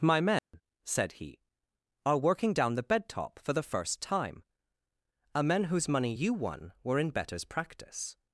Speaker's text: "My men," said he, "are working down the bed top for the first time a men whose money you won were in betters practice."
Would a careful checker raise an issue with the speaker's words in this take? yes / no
no